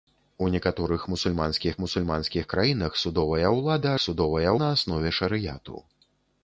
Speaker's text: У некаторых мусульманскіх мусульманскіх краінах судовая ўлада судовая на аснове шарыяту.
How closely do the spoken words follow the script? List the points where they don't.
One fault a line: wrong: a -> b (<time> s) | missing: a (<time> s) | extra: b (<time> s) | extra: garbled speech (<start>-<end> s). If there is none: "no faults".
no faults